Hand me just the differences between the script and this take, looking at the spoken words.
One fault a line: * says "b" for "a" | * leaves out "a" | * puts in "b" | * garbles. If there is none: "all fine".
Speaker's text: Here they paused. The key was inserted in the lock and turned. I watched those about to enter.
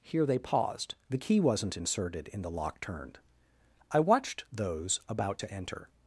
* says "wasn't" for "was"
* leaves out "and"